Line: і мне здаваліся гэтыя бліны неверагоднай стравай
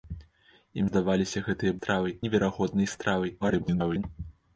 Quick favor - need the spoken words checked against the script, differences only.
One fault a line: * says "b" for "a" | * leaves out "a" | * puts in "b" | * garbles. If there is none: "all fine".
* leaves out "мне"
* says "стравай" for "бліны"
* garbles